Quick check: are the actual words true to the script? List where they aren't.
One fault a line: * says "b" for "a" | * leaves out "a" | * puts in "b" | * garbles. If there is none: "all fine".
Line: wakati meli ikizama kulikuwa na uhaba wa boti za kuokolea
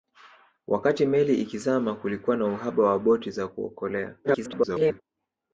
* garbles